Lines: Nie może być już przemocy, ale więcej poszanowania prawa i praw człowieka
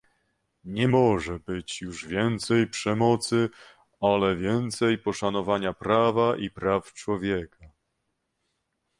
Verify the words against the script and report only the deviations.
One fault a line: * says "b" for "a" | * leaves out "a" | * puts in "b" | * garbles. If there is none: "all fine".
* puts in "więcej"